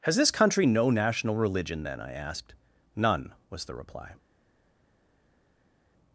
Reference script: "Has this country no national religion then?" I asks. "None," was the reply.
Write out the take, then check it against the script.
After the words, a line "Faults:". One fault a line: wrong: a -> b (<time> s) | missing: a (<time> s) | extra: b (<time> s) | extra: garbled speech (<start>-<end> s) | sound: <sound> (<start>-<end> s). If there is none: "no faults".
"Has this country no national religion then?" I asked. "None," was the reply.
Faults:
wrong: asks -> asked (2.1 s)